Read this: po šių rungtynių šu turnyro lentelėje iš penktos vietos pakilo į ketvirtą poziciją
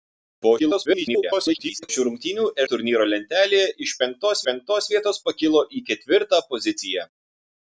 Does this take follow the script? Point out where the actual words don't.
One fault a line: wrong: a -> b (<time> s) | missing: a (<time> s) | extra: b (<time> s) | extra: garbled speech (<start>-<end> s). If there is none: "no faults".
extra: garbled speech (0.6-1.9 s)
missing: šu (2.5 s)
extra: penktos (4.5 s)